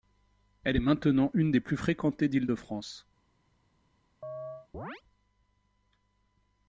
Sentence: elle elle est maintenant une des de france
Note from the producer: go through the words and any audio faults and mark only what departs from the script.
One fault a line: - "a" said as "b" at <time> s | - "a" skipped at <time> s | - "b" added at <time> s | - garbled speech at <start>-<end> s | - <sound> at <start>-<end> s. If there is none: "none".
- "elle" skipped at 0.8 s
- "plus fréquentées d'île" added at 1.6 s
- chirp at 4.2-5.0 s